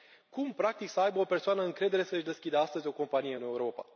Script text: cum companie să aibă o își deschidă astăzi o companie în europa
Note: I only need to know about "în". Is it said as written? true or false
true